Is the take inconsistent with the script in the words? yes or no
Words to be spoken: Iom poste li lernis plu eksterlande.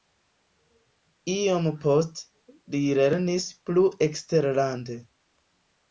no